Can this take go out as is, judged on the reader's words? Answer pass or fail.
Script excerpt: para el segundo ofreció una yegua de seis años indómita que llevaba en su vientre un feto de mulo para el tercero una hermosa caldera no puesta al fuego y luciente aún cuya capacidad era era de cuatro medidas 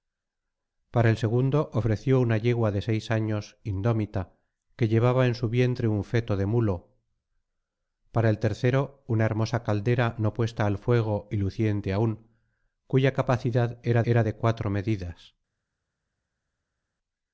pass